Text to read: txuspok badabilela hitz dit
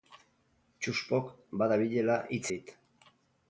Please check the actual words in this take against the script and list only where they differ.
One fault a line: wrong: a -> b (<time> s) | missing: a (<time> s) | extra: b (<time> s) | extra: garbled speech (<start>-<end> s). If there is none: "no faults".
no faults